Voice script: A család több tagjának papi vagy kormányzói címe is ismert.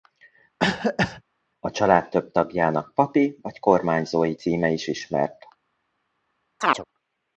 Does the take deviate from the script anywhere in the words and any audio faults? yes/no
yes